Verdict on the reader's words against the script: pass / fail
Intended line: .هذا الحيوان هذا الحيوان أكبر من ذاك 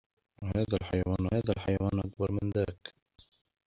pass